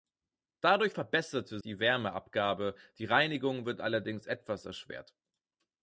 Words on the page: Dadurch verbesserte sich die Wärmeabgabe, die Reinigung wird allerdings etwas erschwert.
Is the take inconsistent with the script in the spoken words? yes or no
yes